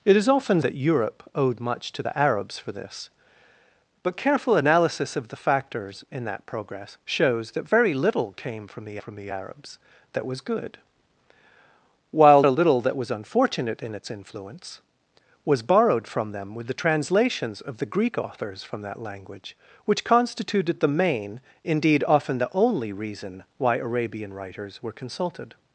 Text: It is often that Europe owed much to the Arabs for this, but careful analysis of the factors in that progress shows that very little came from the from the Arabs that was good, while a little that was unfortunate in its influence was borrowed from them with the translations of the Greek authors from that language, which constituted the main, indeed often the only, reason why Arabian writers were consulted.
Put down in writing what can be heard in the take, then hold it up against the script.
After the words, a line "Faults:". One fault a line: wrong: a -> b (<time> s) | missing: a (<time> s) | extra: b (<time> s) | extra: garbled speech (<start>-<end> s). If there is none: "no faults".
It is often that Europe owed much to the Arabs for this, but careful analysis of the factors in that progress shows that very little came from the from the Arabs that was good, while a little that was unfortunate in its influence was borrowed from them with the translations of the Greek authors from that language, which constituted the main, indeed often the only, reason why Arabian writers were consulted.
Faults:
no faults